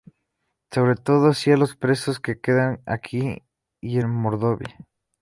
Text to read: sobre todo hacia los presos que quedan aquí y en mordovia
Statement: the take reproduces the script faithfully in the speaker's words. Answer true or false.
true